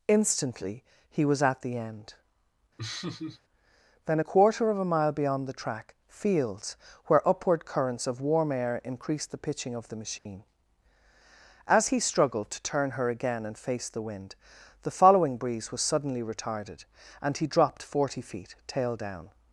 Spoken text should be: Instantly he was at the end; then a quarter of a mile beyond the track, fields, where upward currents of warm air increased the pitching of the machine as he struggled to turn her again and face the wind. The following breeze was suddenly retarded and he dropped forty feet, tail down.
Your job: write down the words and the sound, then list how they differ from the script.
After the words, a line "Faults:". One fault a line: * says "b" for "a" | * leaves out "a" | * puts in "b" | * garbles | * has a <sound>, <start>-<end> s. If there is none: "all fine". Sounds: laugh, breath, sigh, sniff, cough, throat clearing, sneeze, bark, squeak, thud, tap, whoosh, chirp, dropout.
Instantly he was at the end; then a quarter of a mile beyond the track, fields, where upward currents of warm air increased the pitching of the machine as he struggled to turn her again and face the wind. The following breeze was suddenly retarded and he dropped forty feet, tail down.
Faults:
* has a laugh, 2.8-3.4 s
* has a dropout, 10.2-10.3 s